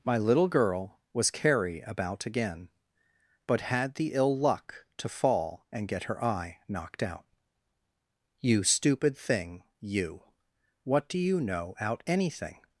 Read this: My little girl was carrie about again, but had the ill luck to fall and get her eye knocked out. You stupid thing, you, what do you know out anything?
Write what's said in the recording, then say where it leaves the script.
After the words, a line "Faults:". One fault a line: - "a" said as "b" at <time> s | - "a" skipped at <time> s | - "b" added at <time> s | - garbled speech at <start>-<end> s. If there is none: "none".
My little girl was carrie about again, but had the ill luck to fall and get her eye knocked out. You stupid thing, you, what do you know out anything?
Faults:
none